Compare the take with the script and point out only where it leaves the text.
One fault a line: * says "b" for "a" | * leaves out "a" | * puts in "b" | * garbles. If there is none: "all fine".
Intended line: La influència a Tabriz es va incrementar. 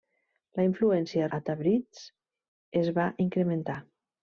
all fine